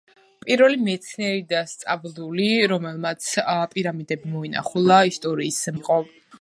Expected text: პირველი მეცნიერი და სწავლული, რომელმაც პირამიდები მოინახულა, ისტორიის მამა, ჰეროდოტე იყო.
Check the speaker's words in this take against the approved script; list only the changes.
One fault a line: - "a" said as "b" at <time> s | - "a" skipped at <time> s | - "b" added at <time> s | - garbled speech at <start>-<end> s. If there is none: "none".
- "მამა ჰეროდოტე" skipped at 5.6 s